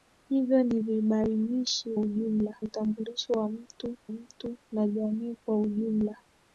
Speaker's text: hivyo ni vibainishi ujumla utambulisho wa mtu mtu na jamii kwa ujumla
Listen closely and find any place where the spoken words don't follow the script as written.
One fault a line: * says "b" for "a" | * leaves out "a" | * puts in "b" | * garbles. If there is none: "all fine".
all fine